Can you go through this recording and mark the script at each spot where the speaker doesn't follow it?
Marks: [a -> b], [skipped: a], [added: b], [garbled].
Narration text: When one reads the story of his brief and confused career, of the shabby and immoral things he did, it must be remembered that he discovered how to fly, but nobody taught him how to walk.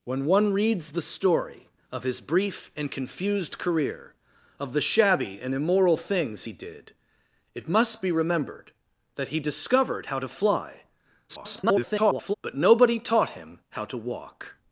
When one reads the story of his brief and confused career, of the shabby and immoral things he did, it must be remembered that he discovered how to fly, [garbled] but nobody taught him how to walk.